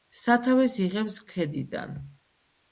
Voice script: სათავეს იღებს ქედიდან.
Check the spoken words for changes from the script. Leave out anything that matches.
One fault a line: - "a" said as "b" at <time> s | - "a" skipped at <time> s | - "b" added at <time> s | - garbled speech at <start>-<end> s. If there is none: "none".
none